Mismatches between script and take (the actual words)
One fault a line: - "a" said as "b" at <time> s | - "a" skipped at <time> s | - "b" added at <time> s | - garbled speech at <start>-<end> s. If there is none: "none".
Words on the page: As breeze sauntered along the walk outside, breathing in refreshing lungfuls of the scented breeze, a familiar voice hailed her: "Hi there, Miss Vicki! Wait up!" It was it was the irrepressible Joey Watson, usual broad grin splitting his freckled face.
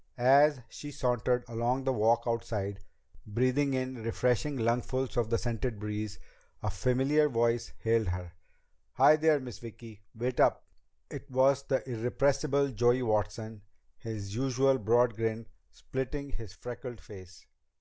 - "breeze" said as "she" at 0.7 s
- "it was" skipped at 11.6 s
- "his" added at 14.0 s